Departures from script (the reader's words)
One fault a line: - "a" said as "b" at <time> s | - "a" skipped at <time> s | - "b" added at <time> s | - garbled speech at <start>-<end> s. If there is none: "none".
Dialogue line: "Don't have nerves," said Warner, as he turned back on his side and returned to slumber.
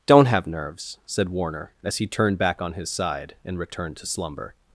none